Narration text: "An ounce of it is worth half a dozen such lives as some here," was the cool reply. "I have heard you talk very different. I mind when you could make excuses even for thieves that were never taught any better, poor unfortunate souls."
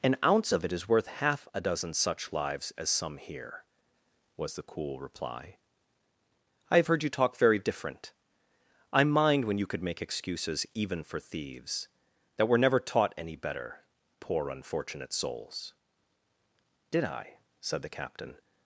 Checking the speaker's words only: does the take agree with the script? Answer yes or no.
no